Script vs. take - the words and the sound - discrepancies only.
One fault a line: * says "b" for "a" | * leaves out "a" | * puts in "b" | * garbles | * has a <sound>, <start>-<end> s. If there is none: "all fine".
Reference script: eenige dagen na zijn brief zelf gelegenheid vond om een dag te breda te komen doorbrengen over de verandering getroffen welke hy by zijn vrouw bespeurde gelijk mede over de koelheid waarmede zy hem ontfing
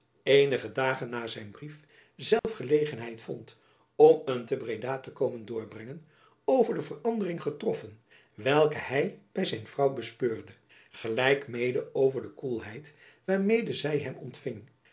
* has a dropout, 2.4-2.4 s
* leaves out "dag"